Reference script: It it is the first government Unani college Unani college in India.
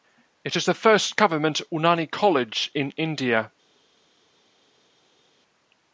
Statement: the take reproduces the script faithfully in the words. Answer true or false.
false